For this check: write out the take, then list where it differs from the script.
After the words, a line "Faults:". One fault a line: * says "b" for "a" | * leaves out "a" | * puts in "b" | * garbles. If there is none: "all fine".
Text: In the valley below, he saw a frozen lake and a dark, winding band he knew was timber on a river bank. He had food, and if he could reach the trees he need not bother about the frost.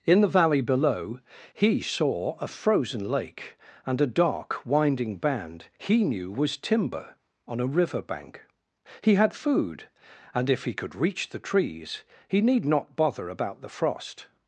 In the valley below, he saw a frozen lake and a dark, winding band he knew was timber on a river bank. He had food, and if he could reach the trees he need not bother about the frost.
Faults:
all fine